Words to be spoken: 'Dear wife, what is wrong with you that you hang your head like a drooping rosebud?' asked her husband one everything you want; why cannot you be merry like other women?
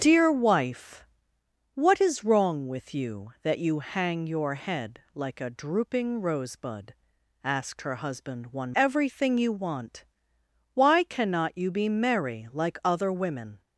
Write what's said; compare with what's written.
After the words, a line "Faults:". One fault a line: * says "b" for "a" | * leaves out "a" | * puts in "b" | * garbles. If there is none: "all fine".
'Dear wife, what is wrong with you that you hang your head like a drooping rosebud?' asked her husband one everything you want; why cannot you be merry like other women?
Faults:
all fine